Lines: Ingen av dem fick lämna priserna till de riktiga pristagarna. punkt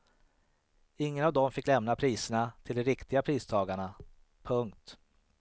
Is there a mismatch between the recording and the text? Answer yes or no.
no